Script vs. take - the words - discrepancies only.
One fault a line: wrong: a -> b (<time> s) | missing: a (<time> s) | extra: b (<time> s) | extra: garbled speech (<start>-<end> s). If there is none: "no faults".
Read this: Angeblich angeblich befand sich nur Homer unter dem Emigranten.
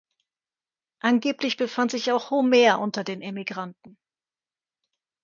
missing: angeblich (1.6 s)
wrong: nur -> auch (2.1 s)
wrong: dem -> den (3.0 s)